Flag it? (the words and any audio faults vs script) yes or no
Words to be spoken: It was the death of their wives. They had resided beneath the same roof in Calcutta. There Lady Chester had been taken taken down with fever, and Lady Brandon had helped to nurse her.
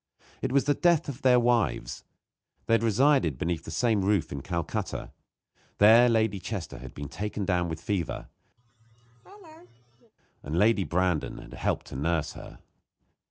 yes